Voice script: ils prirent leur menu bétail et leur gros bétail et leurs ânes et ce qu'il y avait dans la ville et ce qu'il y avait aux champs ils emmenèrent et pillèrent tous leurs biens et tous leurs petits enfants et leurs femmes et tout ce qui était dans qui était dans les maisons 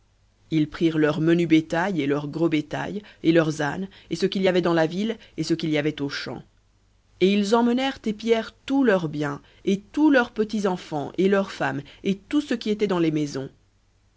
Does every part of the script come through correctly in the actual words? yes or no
no